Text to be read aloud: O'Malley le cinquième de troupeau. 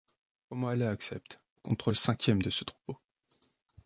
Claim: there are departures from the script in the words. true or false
true